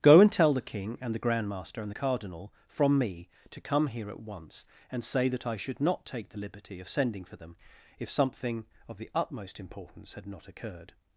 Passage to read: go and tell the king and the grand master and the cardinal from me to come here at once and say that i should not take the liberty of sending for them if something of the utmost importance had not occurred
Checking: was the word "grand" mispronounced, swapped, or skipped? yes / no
no